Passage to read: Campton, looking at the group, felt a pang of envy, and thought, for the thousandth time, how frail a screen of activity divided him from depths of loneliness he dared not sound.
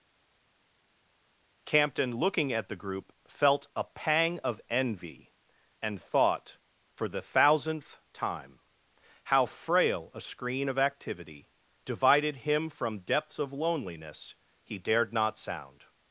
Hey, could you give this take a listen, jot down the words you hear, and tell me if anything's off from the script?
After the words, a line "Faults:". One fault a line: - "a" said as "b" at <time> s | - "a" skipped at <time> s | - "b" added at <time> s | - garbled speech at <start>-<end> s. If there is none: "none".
Campton, looking at the group, felt a pang of envy, and thought, for the thousandth time, how frail a screen of activity divided him from depths of loneliness he dared not sound.
Faults:
none